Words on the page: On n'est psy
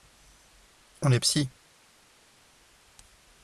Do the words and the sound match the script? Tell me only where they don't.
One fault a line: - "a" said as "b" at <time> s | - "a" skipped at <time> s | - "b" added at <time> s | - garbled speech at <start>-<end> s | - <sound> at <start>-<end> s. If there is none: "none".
none